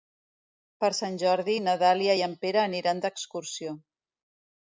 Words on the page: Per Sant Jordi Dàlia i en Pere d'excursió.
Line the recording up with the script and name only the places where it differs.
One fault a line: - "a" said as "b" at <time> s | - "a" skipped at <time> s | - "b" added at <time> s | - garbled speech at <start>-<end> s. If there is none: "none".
- "na" added at 1.6 s
- "aniran" added at 2.7 s